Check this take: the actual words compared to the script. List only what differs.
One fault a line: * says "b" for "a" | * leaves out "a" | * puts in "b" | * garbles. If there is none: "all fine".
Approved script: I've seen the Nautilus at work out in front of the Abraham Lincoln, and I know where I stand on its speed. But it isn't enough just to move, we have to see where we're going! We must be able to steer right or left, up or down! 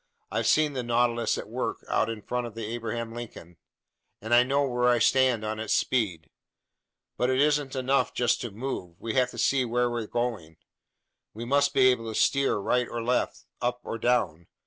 all fine